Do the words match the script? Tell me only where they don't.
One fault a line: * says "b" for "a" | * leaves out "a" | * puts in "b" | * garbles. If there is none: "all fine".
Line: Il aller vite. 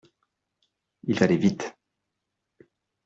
all fine